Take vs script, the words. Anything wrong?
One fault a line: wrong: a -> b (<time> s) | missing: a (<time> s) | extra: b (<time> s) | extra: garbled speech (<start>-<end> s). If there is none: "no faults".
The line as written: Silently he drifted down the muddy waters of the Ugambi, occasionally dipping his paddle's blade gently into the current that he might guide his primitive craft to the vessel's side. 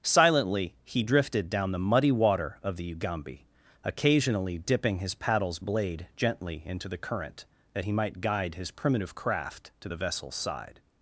wrong: waters -> water (2.1 s)